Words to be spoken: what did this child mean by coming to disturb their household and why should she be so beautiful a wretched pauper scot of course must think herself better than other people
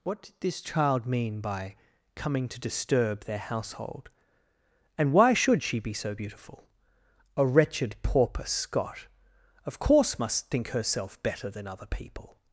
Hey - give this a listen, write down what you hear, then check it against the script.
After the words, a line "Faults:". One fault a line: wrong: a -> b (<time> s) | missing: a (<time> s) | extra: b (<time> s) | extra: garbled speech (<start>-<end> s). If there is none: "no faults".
what did this child mean by coming to disturb their household and why should she be so beautiful a wretched pauper scot of course must think herself better than other people
Faults:
no faults